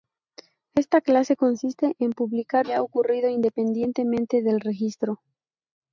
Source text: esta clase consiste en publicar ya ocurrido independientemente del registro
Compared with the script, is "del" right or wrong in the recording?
right